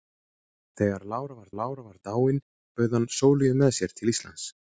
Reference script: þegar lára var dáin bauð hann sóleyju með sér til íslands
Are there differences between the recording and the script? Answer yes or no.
yes